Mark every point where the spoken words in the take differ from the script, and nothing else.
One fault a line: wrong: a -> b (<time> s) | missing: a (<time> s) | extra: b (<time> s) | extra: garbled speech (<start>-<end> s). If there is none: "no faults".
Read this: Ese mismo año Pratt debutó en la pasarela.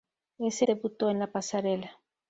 missing: mismo año Pratt (0.7 s)